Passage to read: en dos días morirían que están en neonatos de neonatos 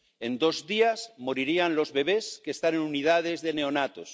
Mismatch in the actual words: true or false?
true